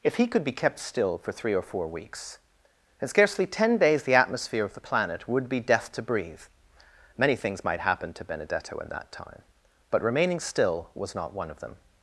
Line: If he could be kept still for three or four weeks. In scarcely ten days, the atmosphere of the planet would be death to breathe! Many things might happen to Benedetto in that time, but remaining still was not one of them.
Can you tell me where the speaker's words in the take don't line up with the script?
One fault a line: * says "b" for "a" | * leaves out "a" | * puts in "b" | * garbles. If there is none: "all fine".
all fine